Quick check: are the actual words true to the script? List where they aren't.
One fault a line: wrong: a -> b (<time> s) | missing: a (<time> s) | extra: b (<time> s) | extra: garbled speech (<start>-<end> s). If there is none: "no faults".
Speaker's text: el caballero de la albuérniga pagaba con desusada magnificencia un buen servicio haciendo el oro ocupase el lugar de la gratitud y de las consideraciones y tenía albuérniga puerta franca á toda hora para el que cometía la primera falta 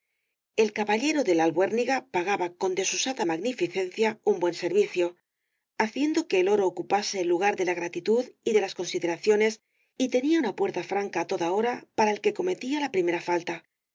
extra: que (6.3 s)
wrong: albuérniga -> una (10.4 s)